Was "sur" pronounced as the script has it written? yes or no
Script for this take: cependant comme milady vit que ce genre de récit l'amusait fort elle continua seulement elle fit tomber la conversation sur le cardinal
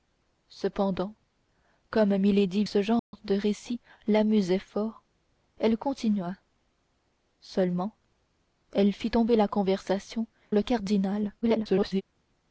no